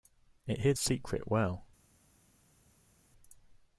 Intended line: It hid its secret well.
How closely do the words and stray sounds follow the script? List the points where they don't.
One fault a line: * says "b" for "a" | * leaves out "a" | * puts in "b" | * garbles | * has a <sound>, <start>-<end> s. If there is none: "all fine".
* leaves out "its"